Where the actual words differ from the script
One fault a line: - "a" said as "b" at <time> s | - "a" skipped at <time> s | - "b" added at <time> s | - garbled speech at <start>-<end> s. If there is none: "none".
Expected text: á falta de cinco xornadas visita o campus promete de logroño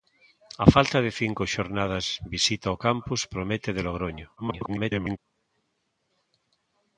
- garbled speech at 4.4-5.2 s